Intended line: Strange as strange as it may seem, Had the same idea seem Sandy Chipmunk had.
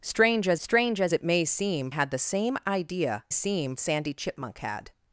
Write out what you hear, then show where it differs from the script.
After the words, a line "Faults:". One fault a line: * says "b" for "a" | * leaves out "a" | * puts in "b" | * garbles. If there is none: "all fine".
Strange as strange as it may seem, Had the same idea seem Sandy Chipmunk had.
Faults:
all fine